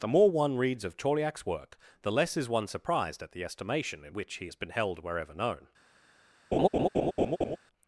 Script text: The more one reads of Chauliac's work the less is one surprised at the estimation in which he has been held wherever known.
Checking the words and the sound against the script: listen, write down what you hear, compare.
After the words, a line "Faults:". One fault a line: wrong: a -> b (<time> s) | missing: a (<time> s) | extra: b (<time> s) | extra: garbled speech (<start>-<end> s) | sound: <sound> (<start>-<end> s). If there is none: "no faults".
The more one reads of Chauliac's work the less is one surprised at the estimation in which he has been held wherever known.
Faults:
sound: laugh (6.5-7.6 s)